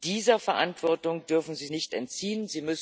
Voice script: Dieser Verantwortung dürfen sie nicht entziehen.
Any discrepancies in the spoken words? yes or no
no